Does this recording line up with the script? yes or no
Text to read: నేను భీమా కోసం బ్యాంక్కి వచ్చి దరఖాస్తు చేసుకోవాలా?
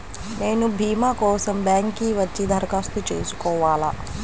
yes